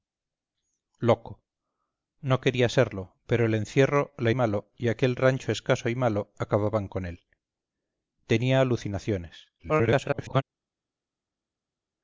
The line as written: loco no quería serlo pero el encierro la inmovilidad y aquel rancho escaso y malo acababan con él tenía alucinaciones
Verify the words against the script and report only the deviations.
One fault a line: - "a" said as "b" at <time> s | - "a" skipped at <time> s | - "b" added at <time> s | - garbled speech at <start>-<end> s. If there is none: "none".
- "inmovilidad" said as "malo" at 4.3 s
- garbled speech at 9.6-10.4 s